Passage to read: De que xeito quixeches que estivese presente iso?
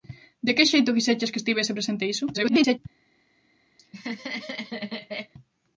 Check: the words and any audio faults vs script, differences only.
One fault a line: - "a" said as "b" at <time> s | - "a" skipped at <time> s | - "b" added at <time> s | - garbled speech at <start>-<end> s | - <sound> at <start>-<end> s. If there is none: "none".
- garbled speech at 2.3-2.8 s
- laugh at 3.8-5.3 s